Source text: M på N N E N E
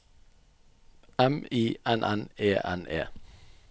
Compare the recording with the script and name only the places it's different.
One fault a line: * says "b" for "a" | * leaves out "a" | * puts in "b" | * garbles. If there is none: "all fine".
* says "I" for "på"